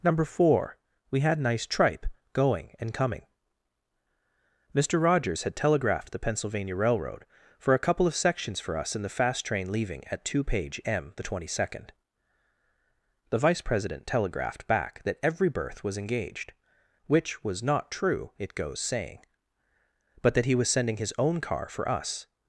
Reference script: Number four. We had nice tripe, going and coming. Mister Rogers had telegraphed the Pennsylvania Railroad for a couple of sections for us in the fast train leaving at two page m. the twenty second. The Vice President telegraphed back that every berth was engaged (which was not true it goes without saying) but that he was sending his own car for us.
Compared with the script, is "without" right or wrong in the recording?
wrong